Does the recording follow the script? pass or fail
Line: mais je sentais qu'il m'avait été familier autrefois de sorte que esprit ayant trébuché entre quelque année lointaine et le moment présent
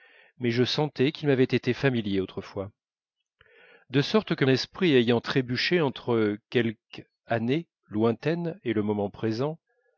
pass